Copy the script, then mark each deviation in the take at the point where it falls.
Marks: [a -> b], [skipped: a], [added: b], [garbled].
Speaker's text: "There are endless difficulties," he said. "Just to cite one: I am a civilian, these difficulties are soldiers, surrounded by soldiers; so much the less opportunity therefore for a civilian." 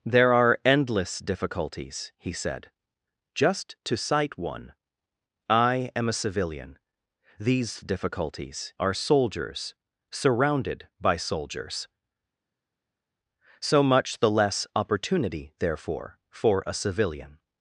"There are endless difficulties," he said. "Just to cite one: I am a civilian, these difficulties are soldiers, surrounded by soldiers; so much the less opportunity therefore for a civilian."